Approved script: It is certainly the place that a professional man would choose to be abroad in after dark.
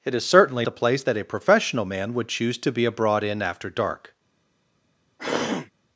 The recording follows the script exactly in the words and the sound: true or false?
false